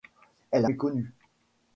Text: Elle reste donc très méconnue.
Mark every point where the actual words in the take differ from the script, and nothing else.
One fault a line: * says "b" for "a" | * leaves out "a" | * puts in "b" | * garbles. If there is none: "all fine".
* leaves out "reste donc très"